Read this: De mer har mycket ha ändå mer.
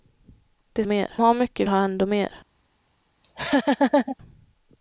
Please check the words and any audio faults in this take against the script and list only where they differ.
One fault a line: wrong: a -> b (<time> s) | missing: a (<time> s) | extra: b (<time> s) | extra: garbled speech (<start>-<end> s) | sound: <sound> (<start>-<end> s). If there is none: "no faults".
sound: laugh (3.2-4.2 s)